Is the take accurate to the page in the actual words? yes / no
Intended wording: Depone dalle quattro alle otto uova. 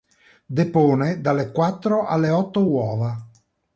yes